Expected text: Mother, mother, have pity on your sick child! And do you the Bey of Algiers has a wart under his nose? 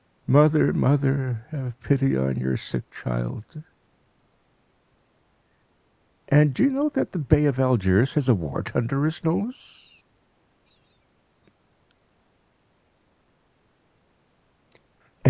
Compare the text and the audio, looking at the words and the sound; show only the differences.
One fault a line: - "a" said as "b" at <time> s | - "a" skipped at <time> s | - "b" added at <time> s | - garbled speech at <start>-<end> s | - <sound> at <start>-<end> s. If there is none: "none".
- "know that" added at 6.7 s